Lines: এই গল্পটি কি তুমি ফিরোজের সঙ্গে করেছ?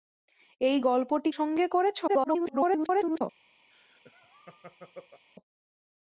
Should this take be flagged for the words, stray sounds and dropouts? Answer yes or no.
yes